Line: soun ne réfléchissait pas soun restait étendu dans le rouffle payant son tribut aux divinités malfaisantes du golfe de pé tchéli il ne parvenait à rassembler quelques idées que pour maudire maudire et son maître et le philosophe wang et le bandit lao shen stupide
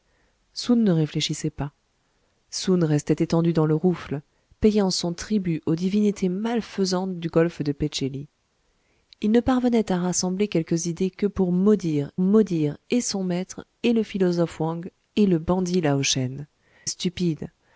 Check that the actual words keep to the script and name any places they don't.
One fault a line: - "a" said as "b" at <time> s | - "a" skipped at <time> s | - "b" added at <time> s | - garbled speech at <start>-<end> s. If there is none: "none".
none